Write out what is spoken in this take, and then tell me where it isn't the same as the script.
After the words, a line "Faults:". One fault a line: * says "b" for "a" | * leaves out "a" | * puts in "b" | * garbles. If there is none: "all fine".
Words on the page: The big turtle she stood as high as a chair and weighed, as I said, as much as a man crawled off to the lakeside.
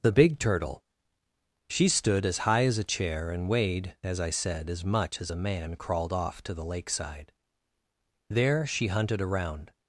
The big turtle she stood as high as a chair and weighed, as I said, as much as a man crawled off to the lakeside. There she hunted around
Faults:
* puts in "There she hunted around"